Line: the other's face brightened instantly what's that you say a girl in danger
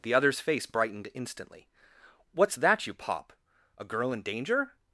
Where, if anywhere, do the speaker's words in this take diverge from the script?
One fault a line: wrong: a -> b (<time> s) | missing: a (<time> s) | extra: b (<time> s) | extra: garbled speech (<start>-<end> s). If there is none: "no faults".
wrong: say -> pop (2.9 s)